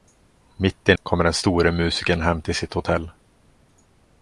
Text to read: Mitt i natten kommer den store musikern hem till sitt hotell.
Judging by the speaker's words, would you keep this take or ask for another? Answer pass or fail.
fail